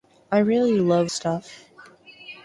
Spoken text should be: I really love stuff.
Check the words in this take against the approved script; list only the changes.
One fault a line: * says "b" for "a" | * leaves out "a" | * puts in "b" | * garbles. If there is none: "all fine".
all fine